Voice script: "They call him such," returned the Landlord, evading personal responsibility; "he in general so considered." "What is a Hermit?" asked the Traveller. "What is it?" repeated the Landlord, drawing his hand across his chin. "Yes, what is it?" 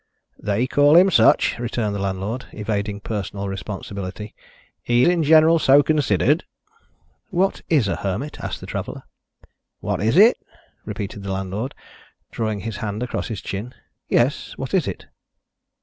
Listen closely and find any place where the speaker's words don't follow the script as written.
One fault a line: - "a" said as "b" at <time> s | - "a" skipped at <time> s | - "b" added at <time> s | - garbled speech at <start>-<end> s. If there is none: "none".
none